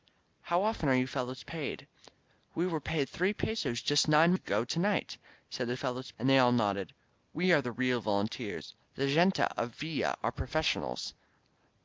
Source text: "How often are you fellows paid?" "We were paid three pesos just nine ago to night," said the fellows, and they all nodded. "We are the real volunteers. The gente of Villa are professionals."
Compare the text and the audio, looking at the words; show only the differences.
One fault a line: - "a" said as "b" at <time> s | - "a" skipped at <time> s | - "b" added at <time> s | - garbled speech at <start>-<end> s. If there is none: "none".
none